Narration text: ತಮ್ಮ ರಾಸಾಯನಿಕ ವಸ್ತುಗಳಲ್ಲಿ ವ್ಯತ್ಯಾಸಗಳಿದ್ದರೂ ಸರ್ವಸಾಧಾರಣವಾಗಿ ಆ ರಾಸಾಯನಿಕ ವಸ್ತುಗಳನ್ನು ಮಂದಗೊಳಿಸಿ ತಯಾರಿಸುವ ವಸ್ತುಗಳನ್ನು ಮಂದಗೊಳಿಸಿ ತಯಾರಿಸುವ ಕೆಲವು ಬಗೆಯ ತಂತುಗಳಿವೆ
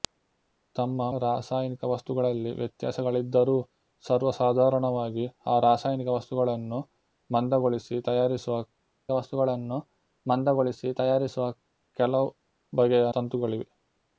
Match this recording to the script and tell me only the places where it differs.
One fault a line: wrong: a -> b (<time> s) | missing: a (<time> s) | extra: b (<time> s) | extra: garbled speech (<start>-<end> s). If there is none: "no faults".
no faults